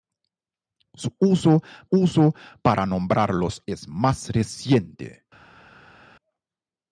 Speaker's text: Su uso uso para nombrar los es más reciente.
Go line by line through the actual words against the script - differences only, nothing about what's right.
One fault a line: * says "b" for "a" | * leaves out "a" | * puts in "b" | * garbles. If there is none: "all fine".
all fine